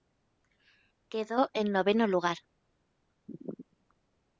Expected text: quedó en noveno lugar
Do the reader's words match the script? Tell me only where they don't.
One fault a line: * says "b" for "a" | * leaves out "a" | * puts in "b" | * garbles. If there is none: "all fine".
all fine